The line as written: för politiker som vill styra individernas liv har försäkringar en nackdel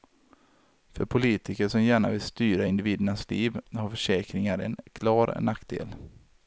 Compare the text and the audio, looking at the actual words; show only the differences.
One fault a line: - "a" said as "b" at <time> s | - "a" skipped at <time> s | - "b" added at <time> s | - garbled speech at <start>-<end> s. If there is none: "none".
- "gärna" added at 1.8 s
- "klar" added at 4.9 s